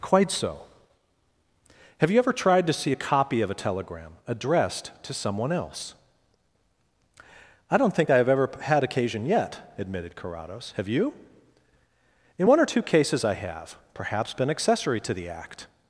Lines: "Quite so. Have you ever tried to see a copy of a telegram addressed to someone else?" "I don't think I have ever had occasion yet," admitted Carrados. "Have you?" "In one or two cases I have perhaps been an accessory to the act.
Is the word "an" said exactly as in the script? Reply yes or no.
no